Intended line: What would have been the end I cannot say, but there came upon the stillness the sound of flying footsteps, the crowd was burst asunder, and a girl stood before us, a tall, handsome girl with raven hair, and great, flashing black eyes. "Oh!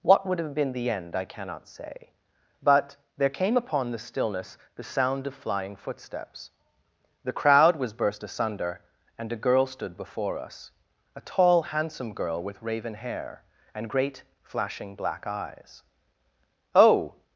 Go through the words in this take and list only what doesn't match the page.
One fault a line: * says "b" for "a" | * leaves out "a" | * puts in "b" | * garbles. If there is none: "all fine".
all fine